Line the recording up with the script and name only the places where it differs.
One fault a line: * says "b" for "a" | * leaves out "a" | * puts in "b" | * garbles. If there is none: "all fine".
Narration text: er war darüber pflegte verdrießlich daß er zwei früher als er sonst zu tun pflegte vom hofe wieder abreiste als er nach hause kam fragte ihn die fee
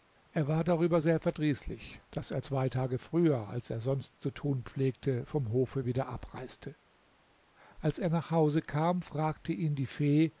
* says "sehr" for "pflegte"
* puts in "tage"